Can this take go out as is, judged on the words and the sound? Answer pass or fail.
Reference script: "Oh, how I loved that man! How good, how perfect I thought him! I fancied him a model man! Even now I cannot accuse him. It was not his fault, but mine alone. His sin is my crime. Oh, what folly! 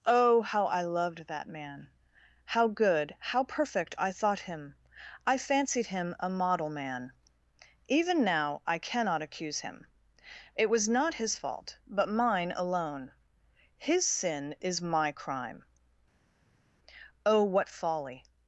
pass